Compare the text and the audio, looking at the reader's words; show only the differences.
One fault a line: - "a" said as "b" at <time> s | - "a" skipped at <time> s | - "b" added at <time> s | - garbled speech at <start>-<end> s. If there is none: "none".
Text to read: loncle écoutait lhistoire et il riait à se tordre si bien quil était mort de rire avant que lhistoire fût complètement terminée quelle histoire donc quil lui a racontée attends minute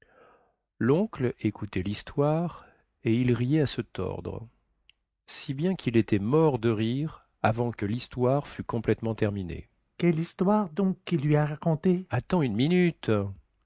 - "une" added at 12.4 s